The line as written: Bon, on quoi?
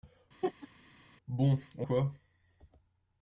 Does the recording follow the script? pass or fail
pass